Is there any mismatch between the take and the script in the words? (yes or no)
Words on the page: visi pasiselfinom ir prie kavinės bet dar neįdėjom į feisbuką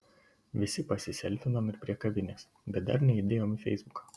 no